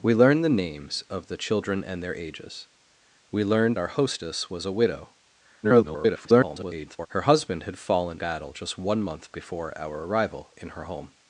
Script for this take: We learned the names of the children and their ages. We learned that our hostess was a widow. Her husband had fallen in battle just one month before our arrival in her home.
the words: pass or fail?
fail